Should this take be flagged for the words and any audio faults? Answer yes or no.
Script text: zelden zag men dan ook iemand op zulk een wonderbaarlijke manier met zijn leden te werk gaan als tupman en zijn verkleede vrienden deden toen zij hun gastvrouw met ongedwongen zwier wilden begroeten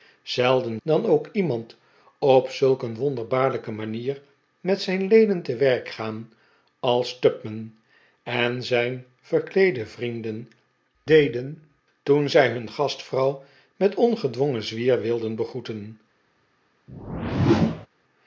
yes